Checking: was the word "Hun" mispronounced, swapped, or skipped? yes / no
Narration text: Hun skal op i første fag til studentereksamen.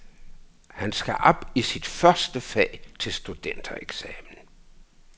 yes